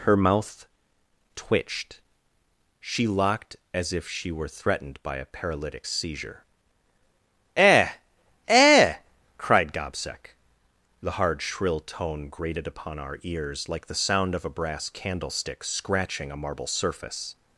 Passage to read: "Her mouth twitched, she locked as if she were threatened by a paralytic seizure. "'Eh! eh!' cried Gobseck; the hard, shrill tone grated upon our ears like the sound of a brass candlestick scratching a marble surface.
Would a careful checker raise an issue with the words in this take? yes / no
no